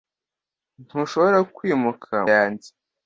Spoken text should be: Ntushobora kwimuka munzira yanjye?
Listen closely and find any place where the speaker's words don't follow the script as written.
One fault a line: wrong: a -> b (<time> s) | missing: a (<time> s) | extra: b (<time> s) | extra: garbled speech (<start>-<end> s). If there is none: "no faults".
missing: munzira (2.1 s)